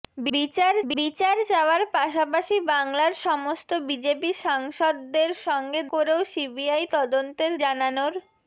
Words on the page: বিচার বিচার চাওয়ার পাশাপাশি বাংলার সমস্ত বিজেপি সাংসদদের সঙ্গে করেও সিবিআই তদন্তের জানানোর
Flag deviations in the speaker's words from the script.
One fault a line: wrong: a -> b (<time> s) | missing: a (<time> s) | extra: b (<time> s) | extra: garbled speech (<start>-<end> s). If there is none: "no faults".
no faults